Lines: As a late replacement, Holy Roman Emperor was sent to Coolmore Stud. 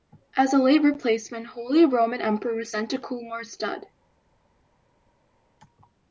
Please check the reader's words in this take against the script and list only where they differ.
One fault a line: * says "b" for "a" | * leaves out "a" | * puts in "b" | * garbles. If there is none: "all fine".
all fine